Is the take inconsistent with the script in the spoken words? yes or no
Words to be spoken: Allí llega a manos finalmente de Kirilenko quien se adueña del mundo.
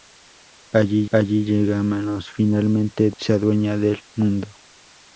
yes